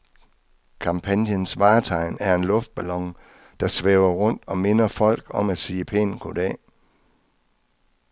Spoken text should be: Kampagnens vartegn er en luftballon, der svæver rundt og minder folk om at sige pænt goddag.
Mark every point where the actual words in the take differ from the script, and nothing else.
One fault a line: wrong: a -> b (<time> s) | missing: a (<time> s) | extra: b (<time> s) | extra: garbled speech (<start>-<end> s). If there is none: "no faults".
no faults